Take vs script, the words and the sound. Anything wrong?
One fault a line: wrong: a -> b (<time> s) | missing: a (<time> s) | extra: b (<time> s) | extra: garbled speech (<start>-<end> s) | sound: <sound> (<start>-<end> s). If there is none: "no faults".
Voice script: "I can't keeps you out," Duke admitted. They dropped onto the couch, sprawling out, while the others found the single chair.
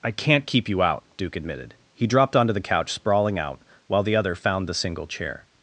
wrong: keeps -> keep (0.5 s)
wrong: They -> He (1.9 s)
wrong: others -> other (4.1 s)